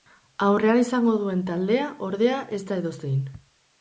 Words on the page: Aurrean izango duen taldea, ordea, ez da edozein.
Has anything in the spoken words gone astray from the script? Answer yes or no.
no